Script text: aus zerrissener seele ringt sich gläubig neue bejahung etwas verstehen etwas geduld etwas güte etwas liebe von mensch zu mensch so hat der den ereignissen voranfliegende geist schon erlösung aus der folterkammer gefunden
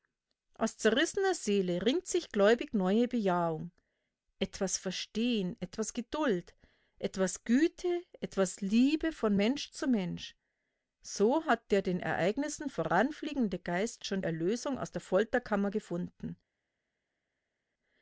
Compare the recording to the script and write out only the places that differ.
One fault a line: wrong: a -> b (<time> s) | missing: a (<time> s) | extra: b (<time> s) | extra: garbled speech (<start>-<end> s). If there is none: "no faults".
no faults